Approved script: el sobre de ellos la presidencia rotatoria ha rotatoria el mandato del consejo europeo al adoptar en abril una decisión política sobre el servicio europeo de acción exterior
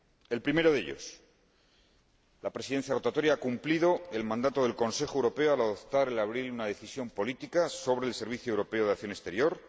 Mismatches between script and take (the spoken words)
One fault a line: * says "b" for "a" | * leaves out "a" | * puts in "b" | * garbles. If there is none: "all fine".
* says "primero" for "sobre"
* says "cumplido" for "rotatoria"